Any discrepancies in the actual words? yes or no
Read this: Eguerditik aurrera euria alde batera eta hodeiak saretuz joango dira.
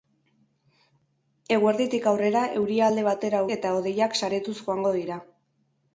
no